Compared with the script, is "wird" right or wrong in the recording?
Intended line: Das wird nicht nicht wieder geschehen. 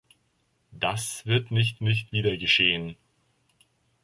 right